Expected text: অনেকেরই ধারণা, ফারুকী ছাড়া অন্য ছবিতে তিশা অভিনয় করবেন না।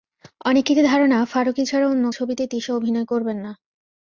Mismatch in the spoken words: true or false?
false